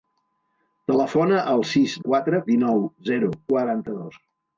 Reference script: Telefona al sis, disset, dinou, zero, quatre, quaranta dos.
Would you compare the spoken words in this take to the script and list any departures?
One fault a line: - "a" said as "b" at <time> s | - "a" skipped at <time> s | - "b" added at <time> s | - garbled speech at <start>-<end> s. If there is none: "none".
- "disset" said as "quatre" at 2.1 s
- "quatre" skipped at 3.3 s